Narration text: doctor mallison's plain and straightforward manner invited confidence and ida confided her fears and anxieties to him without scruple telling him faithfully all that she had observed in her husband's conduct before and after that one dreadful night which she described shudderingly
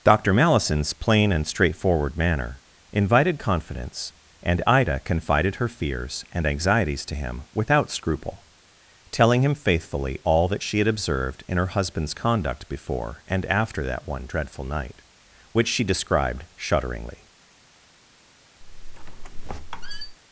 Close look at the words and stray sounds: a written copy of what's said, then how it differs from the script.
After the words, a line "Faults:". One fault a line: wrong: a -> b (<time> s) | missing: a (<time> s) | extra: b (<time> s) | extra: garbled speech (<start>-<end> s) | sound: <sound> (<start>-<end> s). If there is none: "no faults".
doctor mallison's plain and straightforward manner invited confidence and ida confided her fears and anxieties to him without scruple telling him faithfully all that she had observed in her husband's conduct before and after that one dreadful night which she described shudderingly
Faults:
sound: squeak (18.6-20.2 s)